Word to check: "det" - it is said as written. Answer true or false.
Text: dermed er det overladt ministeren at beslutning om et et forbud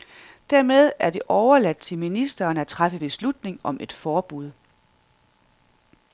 true